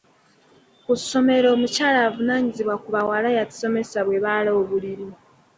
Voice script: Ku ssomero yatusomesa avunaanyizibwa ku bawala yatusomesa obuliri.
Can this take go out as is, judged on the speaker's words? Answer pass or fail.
fail